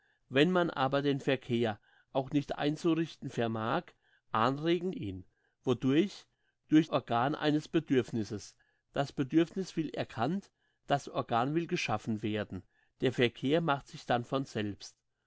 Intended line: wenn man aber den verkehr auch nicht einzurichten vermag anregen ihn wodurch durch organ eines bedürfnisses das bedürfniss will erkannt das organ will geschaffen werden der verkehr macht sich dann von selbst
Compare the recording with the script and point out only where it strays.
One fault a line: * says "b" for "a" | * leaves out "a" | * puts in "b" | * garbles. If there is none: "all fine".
all fine